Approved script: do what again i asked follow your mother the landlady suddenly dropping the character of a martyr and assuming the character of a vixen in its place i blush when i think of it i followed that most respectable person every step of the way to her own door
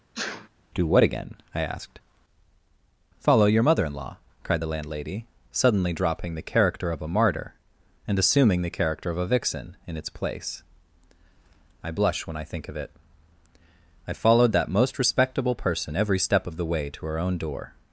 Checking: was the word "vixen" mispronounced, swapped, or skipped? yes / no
no